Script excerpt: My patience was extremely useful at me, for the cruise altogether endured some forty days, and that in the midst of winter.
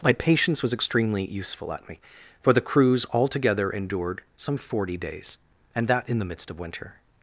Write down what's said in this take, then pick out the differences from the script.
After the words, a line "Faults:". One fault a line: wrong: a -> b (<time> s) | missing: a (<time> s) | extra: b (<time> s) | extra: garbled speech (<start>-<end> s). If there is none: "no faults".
My patience was extremely useful at me, for the cruise altogether endured some forty days, and that in the midst of winter.
Faults:
no faults